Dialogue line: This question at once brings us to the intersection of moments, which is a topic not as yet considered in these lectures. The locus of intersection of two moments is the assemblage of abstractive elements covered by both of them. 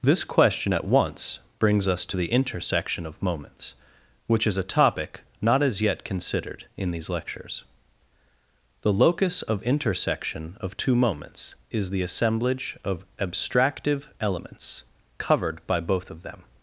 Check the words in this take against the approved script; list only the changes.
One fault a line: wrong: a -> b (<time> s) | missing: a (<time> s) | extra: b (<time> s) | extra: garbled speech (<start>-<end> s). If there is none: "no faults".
no faults